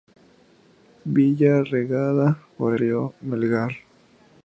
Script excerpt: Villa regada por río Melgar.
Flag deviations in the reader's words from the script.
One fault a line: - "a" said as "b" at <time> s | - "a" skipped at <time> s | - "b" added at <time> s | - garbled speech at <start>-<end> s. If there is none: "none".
none